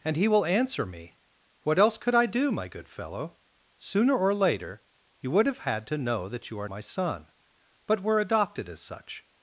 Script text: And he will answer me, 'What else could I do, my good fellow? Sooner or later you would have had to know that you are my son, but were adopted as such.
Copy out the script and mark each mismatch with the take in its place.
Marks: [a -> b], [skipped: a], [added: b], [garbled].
And he will answer me, 'What else could I do, my good fellow? Sooner or later you would have had to know that you are my son, but were adopted as such.